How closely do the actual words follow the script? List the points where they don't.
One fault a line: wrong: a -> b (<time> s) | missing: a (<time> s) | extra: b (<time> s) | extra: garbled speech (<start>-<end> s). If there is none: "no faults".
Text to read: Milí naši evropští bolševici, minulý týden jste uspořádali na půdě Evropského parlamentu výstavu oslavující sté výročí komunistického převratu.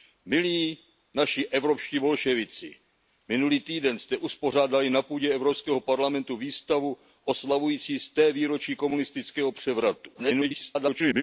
extra: garbled speech (10.1-11.2 s)